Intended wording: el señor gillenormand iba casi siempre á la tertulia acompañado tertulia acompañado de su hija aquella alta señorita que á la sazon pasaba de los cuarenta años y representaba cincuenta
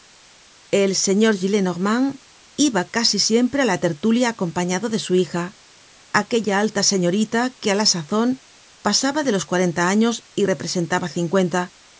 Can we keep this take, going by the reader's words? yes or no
no